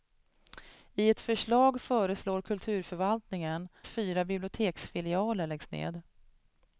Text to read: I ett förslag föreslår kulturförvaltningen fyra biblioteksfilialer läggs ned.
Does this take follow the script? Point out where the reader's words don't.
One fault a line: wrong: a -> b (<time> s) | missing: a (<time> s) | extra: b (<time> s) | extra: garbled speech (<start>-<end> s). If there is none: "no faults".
no faults